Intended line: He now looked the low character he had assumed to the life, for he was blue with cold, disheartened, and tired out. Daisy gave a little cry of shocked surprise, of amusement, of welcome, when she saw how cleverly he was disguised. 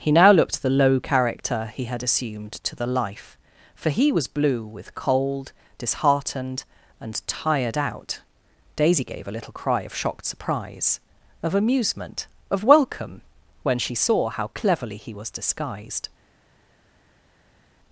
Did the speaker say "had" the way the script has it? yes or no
yes